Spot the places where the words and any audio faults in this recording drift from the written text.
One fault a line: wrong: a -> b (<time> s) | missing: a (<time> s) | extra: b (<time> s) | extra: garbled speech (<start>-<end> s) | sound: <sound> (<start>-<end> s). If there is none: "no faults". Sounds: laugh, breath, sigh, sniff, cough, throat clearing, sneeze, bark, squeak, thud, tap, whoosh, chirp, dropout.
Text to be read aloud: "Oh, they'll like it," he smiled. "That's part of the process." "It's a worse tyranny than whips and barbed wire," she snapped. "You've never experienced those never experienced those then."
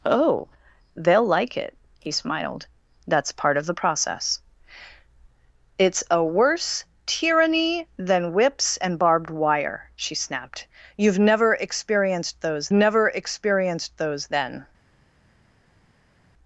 no faults